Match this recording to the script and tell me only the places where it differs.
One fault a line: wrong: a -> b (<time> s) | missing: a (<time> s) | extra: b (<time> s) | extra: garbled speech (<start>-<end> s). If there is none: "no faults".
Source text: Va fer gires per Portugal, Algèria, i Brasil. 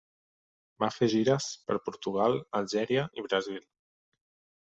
no faults